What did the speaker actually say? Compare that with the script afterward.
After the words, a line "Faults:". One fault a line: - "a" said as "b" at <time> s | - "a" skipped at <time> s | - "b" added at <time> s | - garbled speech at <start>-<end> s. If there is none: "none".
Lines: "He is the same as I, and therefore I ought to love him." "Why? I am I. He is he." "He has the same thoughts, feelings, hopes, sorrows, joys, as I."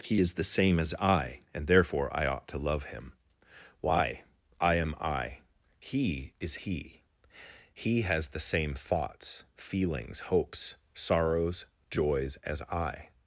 "He is the same as I, and therefore I ought to love him." "Why? I am I. He is he." "He has the same thoughts, feelings, hopes, sorrows, joys, as I."
Faults:
none